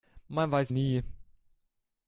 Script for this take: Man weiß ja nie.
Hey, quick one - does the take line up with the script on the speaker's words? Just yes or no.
no